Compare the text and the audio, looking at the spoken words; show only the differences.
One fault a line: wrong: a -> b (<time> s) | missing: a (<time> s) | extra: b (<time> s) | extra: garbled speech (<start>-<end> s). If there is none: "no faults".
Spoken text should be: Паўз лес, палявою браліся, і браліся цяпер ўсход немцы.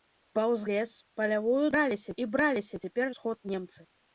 no faults